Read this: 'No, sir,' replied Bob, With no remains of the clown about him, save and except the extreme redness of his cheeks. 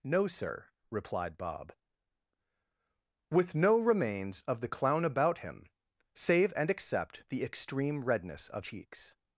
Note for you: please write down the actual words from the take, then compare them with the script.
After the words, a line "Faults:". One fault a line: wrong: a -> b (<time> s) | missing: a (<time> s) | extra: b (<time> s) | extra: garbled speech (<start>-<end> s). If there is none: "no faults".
'No, sir,' replied Bob, With no remains of the clown about him, save and except the extreme redness of cheeks.
Faults:
missing: his (8.7 s)